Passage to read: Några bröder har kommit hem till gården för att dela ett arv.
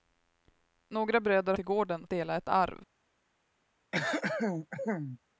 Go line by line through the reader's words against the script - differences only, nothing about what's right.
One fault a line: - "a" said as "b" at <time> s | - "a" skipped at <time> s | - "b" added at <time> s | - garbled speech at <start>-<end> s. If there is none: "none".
- "har kommit hem" skipped at 1.5 s
- "för att" skipped at 2.1 s